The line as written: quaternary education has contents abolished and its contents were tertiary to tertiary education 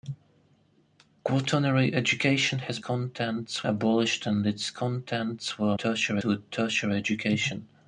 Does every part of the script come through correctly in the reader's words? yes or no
yes